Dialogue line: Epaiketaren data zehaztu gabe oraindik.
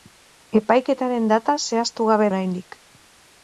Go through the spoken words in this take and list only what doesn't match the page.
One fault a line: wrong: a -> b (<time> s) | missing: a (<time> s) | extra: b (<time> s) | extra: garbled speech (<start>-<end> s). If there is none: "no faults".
no faults